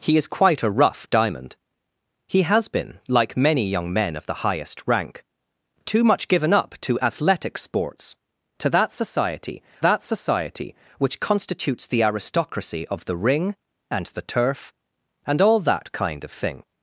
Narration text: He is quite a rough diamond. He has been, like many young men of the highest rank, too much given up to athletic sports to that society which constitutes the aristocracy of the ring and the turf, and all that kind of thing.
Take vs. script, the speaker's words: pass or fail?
fail